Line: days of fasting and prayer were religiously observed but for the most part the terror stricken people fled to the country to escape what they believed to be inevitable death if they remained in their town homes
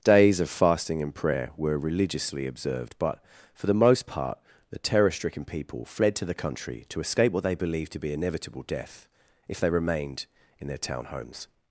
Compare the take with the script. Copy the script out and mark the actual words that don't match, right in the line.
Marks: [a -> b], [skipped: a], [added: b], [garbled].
days of fasting and prayer were religiously observed but for the most part the terror stricken people fled to the country to escape what they believed to be inevitable death if they remained in their town homes